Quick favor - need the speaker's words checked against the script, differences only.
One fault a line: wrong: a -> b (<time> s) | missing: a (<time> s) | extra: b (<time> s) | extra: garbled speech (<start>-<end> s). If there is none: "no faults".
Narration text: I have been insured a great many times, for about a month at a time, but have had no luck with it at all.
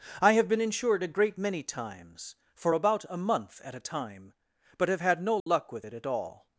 no faults